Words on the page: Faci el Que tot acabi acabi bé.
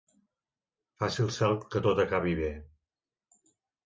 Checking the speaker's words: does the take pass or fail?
fail